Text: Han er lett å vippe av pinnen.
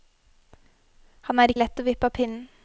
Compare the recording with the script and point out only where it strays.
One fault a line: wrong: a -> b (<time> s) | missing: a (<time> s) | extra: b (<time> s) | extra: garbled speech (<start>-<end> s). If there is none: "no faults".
no faults